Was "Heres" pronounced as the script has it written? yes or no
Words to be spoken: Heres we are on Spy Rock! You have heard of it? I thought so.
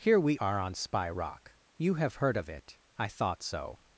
no